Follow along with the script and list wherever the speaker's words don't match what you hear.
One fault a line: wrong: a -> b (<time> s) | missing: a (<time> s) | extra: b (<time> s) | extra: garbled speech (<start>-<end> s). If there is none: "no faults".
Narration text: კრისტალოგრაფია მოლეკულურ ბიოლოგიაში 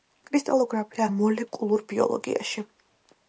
no faults